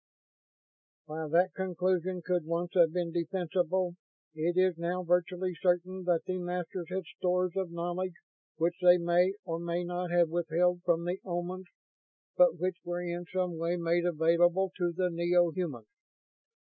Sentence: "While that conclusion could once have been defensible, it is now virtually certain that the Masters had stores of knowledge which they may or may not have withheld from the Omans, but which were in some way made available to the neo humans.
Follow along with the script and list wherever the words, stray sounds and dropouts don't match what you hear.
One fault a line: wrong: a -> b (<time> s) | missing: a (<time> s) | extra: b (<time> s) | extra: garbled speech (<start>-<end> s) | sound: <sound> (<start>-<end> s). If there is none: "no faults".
no faults